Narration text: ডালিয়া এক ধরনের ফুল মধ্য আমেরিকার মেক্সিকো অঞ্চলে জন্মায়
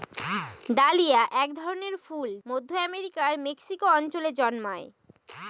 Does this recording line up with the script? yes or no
yes